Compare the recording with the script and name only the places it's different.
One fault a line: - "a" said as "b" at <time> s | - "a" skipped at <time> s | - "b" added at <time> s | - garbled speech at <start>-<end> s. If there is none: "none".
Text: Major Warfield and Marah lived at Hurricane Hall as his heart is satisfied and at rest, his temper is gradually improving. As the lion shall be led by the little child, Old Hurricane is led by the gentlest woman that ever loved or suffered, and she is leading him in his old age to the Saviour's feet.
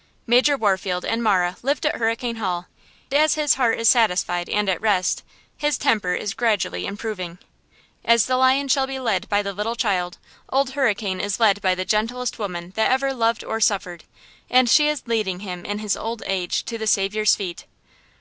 none